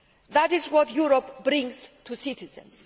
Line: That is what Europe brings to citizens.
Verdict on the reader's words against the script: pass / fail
pass